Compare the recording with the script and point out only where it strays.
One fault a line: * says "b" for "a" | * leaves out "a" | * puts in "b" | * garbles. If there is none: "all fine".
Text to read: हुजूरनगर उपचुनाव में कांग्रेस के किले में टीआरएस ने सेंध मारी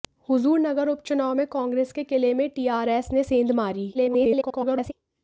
* garbles